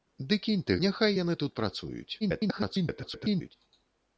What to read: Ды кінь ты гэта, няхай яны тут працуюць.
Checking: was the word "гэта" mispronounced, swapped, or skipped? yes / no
yes